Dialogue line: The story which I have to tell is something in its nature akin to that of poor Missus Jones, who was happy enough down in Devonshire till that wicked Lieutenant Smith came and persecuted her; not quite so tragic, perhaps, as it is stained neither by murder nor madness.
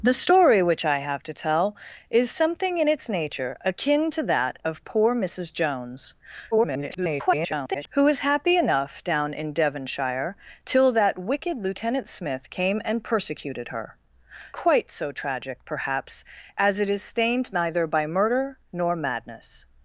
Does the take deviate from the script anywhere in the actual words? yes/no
yes